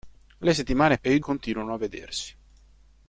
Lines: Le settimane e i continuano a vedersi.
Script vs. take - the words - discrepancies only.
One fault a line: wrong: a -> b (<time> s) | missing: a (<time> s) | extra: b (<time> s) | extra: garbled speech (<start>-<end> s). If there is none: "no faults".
no faults